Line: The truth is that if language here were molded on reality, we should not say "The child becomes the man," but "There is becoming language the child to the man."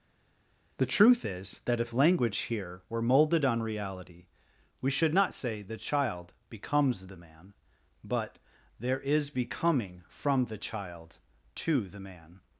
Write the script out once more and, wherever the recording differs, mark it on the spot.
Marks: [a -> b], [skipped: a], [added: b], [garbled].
The truth is that if language here were molded on reality, we should not say "The child becomes the man," but "There is becoming [language -> from] the child to the man."